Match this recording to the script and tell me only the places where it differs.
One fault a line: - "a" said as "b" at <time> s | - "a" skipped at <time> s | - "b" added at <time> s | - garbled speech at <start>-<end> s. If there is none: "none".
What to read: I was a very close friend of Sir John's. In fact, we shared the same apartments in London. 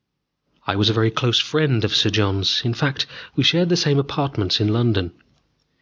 none